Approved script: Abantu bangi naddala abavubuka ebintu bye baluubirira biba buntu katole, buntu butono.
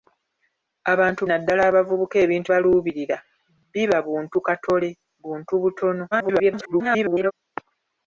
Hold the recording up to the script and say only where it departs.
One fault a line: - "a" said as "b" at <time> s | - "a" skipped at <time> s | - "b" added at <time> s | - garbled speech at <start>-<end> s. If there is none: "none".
- "bangi" skipped at 1.2 s
- "bye" skipped at 2.5 s
- garbled speech at 6.1-7.3 s